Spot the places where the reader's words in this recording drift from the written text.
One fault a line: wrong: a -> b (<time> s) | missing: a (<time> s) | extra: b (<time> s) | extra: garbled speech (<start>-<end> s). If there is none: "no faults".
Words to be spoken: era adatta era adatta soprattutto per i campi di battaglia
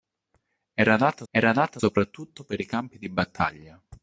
no faults